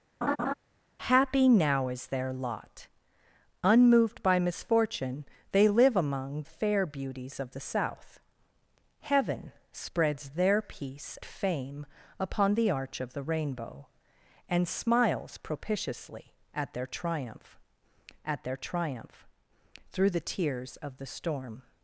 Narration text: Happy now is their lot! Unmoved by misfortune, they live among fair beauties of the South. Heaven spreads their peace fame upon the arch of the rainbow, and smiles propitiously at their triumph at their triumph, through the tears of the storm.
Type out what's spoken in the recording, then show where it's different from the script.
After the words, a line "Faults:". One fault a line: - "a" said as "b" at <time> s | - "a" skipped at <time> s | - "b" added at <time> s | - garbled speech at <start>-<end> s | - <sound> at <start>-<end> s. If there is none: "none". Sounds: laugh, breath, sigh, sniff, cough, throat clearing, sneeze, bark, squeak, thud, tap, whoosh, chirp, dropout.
Happy now is their lot! Unmoved by misfortune, they live among fair beauties of the South. Heaven spreads their peace fame upon the arch of the rainbow, and smiles propitiously at their triumph at their triumph, through the tears of the storm.
Faults:
- laugh at 0.2-0.5 s